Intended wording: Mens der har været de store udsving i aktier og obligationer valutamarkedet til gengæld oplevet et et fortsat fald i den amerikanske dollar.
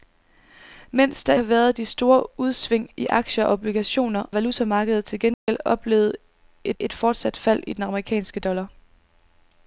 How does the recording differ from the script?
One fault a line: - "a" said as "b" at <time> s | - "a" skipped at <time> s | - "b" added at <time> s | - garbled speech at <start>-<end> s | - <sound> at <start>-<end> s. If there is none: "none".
- dropout at 5.3-5.5 s